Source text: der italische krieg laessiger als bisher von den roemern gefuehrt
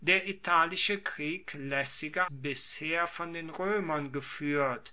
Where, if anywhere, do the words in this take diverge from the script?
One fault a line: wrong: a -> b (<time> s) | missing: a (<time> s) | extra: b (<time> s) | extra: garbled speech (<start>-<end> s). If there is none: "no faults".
missing: als (2.3 s)